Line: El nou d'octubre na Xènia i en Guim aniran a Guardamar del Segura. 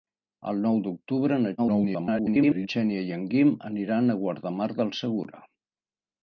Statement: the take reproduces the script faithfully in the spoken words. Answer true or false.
false